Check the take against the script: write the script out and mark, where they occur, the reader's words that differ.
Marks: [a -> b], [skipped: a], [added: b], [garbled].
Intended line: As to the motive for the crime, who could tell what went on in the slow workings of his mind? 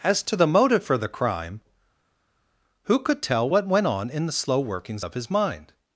As to the motive for the crime, who could tell what went on in the slow workings of his mind?